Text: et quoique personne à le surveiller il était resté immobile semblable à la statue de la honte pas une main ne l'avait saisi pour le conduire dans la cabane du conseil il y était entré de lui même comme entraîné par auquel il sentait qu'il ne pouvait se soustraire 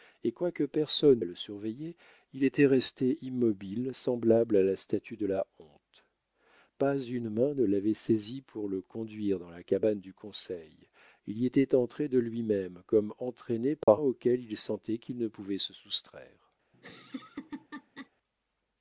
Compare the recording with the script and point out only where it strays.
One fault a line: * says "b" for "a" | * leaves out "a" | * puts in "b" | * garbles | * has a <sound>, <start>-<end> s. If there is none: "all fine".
* has a dropout, 13.8-13.9 s
* has a laugh, 16.7-18.1 s